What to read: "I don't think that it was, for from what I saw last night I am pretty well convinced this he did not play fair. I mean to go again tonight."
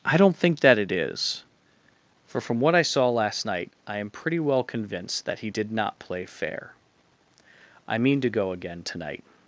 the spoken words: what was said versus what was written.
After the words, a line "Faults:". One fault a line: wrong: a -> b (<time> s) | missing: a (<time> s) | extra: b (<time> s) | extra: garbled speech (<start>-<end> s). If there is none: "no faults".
"I don't think that it is, for from what I saw last night I am pretty well convinced that he did not play fair. I mean to go again tonight."
Faults:
wrong: was -> is (0.9 s)
wrong: this -> that (5.2 s)